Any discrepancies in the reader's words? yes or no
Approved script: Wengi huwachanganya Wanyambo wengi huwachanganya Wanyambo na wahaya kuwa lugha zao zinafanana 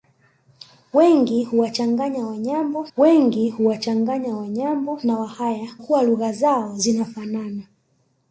no